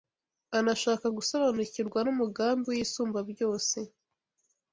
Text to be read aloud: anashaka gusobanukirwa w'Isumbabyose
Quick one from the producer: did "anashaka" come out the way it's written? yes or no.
yes